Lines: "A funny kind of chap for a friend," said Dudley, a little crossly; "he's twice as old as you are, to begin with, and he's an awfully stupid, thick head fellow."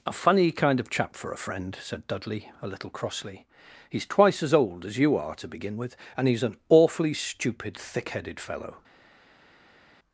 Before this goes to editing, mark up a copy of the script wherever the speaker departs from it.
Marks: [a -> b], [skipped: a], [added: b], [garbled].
"A funny kind of chap for a friend," said Dudley, a little crossly; "he's twice as old as you are, to begin with, and he's an awfully stupid, thick [head -> headed] fellow."